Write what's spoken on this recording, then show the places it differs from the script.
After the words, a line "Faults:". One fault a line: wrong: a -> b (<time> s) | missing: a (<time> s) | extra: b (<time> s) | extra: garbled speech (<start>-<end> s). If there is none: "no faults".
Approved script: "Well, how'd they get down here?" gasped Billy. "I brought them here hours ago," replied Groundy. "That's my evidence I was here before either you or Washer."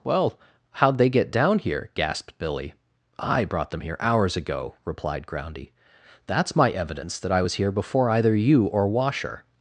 "Well, how'd they get down here?" gasped Billy. "I brought them here hours ago," replied Groundy. "That's my evidence that I was here before either you or Washer."
Faults:
extra: that (7.2 s)